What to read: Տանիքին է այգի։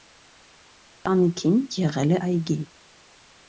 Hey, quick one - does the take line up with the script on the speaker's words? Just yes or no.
no